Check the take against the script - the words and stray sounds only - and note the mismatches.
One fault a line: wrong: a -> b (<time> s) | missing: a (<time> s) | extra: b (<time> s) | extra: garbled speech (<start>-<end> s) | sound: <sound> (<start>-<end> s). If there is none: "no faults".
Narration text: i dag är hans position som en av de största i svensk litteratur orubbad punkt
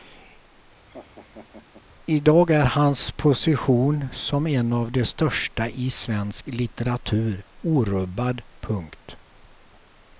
sound: laugh (0.9-1.9 s)